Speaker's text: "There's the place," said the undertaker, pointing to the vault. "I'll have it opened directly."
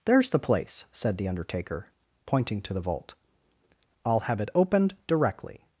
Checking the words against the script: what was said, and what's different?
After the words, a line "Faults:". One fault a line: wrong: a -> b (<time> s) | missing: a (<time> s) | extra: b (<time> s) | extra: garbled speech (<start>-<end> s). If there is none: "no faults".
"There's the place," said the undertaker, pointing to the vault. "I'll have it opened directly."
Faults:
no faults